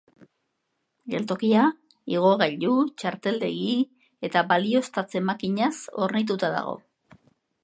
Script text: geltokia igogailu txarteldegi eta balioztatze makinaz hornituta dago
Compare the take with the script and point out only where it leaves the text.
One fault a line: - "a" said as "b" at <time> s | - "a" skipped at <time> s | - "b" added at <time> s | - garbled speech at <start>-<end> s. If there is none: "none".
none